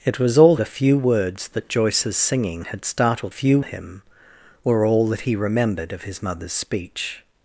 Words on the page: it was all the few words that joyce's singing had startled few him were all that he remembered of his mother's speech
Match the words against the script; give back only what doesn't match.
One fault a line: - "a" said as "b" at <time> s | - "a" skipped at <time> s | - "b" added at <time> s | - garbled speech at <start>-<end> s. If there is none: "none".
none